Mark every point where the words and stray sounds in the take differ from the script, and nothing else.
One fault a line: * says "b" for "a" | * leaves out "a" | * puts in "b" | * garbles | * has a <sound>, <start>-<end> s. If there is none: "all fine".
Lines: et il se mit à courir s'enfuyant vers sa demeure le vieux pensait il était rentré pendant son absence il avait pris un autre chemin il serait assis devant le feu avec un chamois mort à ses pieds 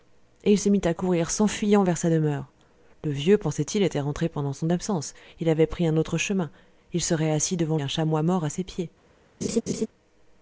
* leaves out "le feu avec"
* has a laugh, 9.4-9.9 s